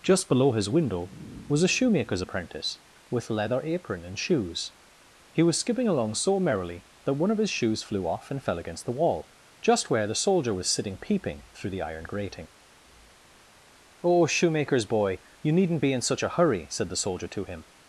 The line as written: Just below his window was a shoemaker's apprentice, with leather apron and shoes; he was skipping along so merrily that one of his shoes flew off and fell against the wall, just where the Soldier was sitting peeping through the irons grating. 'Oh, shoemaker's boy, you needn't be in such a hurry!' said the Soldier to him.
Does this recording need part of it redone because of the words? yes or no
yes